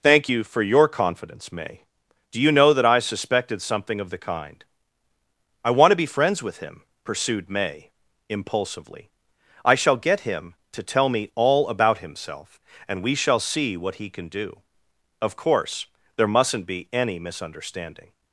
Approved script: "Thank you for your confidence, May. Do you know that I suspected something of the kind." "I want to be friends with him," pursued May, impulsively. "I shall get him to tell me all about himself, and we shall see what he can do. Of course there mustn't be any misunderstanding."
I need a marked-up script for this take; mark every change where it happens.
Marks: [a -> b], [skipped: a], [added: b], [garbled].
"Thank you for your confidence, May. Do you know that I suspected something of the kind." "I want to be friends with him," pursued May, impulsively. "I shall get him to tell me all about himself, and we shall see what he can do. Of course there mustn't be any misunderstanding."